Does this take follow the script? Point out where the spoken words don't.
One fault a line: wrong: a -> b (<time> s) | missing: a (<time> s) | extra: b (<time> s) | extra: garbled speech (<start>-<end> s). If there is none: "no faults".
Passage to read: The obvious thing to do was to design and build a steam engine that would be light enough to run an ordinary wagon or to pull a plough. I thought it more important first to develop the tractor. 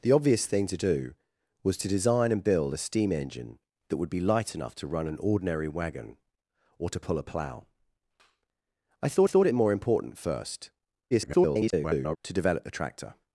extra: thought (9.3 s)
extra: garbled speech (11.1-12.2 s)